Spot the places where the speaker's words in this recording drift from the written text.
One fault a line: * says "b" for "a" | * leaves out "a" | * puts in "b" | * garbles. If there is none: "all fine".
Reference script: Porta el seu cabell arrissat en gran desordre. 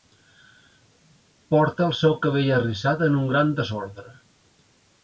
* puts in "un"